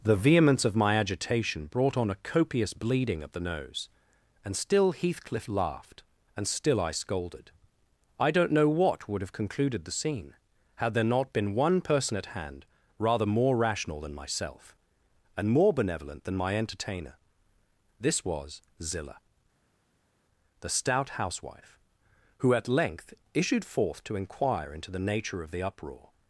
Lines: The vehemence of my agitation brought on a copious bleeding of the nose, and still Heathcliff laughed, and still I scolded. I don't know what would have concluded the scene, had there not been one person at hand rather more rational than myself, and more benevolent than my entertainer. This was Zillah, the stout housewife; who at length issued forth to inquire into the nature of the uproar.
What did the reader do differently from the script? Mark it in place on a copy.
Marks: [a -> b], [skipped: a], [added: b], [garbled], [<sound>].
The vehemence of my agitation brought on a copious bleeding of the nose, and still Heathcliff laughed, and still I scolded. I don't know what would have concluded the scene, had there not been one person at hand rather more rational than myself, and more benevolent than my entertainer. This was Zillah, the stout housewife; who at length issued forth to inquire into the nature of the uproar.